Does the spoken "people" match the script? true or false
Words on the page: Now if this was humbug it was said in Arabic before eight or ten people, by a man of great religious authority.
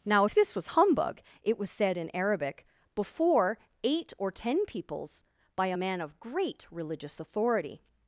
false